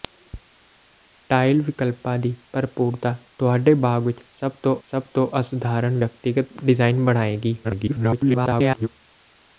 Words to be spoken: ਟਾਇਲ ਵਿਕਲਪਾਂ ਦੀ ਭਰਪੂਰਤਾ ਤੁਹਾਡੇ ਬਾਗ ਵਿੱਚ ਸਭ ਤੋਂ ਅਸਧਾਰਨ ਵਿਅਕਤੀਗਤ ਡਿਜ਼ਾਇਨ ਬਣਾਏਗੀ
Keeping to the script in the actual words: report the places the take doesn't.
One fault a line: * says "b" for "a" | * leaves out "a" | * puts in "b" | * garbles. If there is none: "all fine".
* puts in "ਸਭ ਤੋਂ"
* garbles